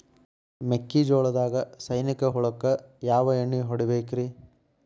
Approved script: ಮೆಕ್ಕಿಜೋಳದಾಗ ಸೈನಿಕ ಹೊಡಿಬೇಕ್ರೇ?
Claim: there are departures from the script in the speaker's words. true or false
true